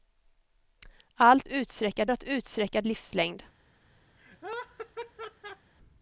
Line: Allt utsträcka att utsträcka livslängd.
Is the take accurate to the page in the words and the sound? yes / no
no